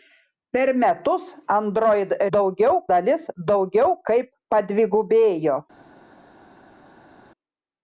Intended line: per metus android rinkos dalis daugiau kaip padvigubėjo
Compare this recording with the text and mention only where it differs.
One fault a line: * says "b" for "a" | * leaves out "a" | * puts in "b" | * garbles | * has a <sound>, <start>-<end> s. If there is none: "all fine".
* says "daugiau" for "rinkos"